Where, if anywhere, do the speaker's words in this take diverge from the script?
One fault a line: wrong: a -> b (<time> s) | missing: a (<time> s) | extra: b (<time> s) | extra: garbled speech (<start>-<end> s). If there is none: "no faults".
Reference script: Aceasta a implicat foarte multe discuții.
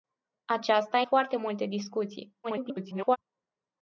missing: implicat (1.0 s)
extra: garbled speech (2.4-3.2 s)